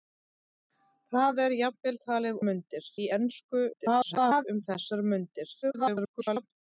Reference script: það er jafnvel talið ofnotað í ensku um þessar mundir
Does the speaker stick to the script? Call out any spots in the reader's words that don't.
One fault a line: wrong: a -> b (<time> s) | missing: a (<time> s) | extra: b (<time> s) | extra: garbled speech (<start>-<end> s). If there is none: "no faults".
wrong: ofnotað -> mundir (2.5 s)
extra: garbled speech (3.7-4.5 s)
extra: garbled speech (5.6-6.5 s)